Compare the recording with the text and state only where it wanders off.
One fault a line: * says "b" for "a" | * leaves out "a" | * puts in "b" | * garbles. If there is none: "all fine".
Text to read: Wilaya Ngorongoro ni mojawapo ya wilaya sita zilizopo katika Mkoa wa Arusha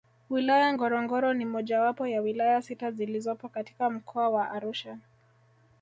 all fine